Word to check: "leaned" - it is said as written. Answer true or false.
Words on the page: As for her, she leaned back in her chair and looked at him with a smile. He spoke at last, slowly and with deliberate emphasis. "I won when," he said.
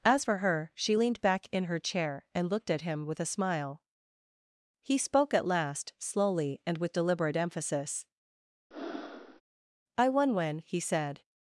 true